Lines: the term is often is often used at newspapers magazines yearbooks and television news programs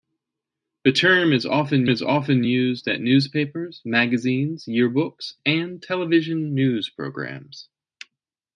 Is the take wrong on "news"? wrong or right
right